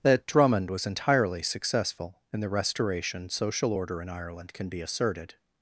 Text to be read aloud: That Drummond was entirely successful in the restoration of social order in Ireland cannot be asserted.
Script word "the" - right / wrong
right